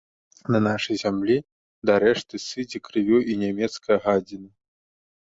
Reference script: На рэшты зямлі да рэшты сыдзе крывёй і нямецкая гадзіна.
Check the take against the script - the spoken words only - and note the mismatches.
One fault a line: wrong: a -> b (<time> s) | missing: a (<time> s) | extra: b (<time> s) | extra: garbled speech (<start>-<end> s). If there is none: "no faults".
wrong: рэшты -> нашай (0.7 s)